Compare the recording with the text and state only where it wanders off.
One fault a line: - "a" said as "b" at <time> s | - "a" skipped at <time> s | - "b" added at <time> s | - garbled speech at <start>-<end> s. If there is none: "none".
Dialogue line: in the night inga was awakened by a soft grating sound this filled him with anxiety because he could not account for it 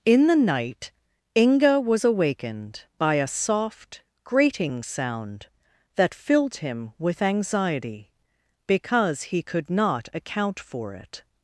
- "this" said as "that" at 6.0 s